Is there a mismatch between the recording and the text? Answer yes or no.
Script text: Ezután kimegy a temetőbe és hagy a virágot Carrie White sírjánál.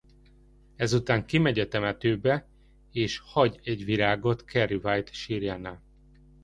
yes